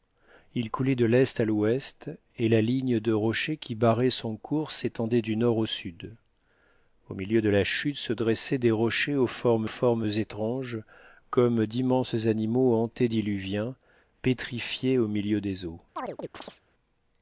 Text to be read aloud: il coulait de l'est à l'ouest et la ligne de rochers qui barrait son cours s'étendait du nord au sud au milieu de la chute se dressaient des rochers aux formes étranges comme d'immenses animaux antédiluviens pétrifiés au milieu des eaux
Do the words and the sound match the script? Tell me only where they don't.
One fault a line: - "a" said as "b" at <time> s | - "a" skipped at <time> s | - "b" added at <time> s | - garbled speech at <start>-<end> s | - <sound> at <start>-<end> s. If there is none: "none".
- "formes" added at 9.7 s
- chirp at 16.0-16.6 s